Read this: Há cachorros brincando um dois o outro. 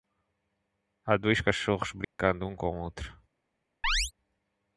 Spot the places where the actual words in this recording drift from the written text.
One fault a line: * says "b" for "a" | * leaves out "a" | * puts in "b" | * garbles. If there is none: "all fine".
* puts in "dois"
* says "com" for "dois"